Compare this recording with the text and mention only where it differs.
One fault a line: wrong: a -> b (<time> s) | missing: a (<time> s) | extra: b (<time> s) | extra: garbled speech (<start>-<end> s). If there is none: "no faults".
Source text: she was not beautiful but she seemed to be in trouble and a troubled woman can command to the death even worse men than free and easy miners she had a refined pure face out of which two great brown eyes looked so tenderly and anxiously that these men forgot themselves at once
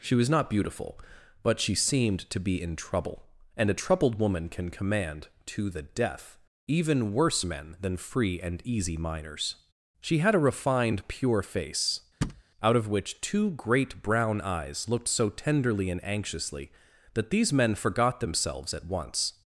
no faults